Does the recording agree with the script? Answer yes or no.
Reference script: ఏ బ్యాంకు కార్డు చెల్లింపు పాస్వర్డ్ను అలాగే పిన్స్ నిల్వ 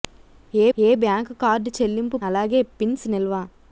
no